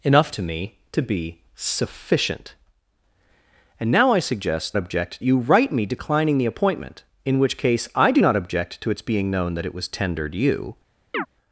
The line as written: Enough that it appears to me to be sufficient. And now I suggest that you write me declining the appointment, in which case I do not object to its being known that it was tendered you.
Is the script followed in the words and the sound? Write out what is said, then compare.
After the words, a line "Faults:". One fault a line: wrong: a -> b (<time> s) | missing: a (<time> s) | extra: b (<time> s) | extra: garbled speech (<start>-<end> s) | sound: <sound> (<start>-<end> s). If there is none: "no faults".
Enough to me to be sufficient. And now I suggest object you write me declining the appointment, in which case I do not object to its being known that it was tendered you.
Faults:
missing: that it appears (0.3 s)
wrong: that -> object (4.8 s)
sound: chirp (11.1-11.3 s)